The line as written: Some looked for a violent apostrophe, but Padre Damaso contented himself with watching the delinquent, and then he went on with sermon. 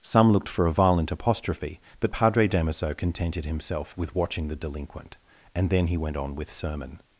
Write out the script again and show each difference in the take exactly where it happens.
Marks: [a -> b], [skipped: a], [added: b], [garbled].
Some looked for a violent apostrophe, but Padre Damaso contented himself with watching the delinquent, and then he went on with sermon.